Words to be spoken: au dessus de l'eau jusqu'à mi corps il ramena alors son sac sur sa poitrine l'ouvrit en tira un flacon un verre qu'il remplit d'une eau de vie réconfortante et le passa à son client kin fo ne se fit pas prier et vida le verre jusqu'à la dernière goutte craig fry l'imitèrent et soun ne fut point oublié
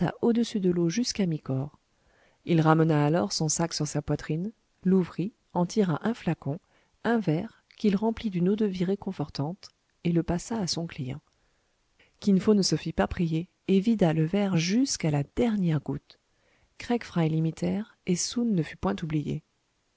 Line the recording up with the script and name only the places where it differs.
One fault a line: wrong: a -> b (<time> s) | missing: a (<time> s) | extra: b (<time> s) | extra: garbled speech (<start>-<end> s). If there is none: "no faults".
no faults